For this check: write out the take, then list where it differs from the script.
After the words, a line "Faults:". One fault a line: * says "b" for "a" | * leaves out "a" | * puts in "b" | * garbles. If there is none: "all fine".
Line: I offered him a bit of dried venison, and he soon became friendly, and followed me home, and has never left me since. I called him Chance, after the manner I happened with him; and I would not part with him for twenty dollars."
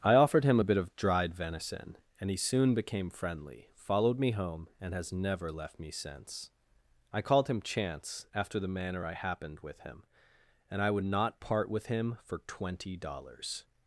I offered him a bit of dried venison, and he soon became friendly, followed me home, and has never left me since. I called him Chance, after the manner I happened with him; and I would not part with him for twenty dollars."
Faults:
* leaves out "and"